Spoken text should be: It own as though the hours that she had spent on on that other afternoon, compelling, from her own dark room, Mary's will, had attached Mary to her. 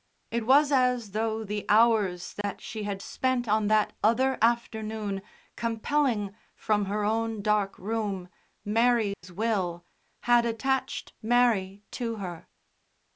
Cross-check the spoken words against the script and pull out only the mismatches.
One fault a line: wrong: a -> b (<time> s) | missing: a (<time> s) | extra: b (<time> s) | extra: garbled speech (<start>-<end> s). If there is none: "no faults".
wrong: own -> was (0.5 s)
missing: on (3.7 s)